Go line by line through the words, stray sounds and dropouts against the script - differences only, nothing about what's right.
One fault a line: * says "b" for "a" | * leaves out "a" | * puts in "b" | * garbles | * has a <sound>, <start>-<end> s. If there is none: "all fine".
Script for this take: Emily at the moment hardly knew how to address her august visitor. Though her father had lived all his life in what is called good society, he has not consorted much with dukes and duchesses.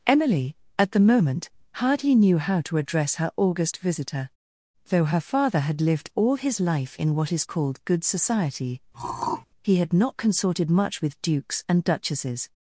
* has a throat clearing, 8.9-9.5 s
* says "had" for "has"